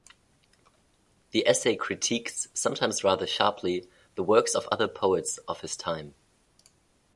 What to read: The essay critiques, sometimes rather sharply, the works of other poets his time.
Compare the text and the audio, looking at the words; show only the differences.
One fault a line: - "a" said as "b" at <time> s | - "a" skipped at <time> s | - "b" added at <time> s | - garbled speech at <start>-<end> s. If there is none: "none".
- "of" added at 5.5 s